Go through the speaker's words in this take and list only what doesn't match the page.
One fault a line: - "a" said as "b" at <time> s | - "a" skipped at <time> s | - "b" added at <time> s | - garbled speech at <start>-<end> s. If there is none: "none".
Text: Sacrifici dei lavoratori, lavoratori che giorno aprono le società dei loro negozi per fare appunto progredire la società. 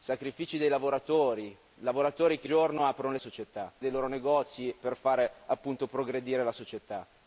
none